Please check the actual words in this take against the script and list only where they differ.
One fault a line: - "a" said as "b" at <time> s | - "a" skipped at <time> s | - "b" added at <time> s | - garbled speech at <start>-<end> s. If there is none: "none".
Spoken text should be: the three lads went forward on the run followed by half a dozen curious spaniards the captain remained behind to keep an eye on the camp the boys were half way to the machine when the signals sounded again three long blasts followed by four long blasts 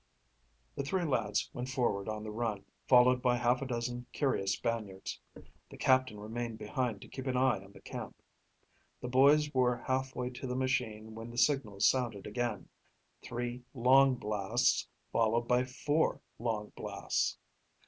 none